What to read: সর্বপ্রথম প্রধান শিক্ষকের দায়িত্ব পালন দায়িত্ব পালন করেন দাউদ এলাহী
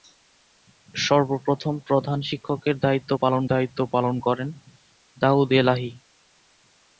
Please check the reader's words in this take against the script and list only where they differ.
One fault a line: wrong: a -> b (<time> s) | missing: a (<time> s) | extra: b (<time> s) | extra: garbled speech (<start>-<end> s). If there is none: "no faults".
no faults